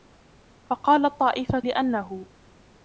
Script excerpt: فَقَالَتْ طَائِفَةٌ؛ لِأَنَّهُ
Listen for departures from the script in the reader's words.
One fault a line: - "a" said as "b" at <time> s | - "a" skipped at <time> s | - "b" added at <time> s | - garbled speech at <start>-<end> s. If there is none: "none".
none